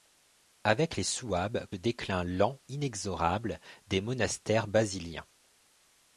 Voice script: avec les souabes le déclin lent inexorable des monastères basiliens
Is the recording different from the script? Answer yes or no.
no